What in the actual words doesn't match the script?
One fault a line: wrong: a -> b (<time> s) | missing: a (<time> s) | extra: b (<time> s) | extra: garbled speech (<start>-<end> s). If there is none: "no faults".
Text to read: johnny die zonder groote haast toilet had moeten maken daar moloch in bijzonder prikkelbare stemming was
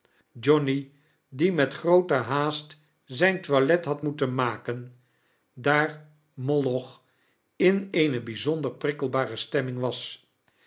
wrong: zonder -> met (1.5 s)
extra: zijn (3.0 s)
extra: eene (7.9 s)